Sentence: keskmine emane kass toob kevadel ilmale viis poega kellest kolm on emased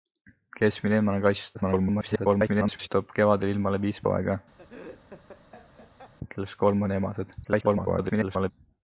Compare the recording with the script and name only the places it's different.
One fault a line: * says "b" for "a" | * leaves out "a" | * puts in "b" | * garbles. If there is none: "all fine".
* garbles
* garbles